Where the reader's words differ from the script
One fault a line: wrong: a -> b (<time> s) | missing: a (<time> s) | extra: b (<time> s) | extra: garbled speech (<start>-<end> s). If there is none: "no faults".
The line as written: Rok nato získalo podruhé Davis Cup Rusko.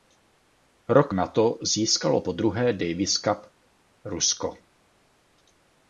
no faults